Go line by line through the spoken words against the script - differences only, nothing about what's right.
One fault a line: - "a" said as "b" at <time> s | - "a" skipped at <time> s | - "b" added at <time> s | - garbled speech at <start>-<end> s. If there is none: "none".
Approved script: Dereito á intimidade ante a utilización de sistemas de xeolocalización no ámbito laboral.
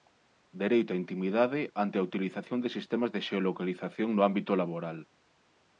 none